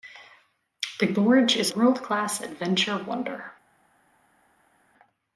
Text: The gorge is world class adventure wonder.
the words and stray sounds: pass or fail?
pass